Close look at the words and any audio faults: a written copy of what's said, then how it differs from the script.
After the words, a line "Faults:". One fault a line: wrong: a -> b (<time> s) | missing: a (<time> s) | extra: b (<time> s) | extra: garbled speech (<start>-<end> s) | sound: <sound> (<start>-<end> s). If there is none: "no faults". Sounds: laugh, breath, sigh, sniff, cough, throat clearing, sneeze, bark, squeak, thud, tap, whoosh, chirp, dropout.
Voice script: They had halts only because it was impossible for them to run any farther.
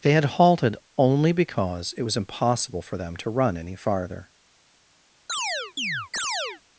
They had halted only because it was impossible for them to run any farther.
Faults:
wrong: halts -> halted (0.2 s)
sound: chirp (5.3-6.6 s)